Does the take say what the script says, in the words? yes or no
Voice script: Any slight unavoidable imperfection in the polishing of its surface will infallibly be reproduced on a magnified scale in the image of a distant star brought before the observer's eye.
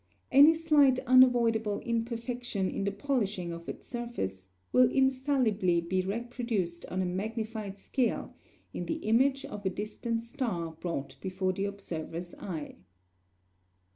yes